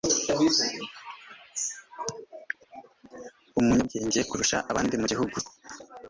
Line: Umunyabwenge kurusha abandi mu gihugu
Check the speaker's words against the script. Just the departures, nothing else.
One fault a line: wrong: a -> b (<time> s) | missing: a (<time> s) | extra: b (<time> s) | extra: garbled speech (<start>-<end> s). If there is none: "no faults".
no faults